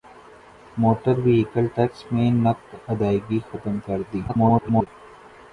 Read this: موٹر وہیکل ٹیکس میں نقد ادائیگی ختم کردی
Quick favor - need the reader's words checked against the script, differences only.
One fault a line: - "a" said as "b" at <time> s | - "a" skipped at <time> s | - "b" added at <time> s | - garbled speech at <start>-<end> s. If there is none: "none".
- garbled speech at 4.3-4.9 s